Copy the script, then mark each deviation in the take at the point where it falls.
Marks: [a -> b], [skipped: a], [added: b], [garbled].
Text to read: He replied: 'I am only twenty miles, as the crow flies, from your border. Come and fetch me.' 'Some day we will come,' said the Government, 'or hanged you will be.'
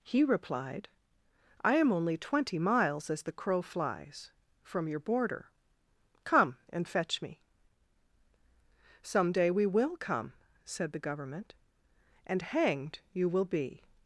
He replied: 'I am only twenty miles, as the crow flies, from your border. Come and fetch me.' 'Some day we will come,' said the Government, ['or -> and] hanged you will be.'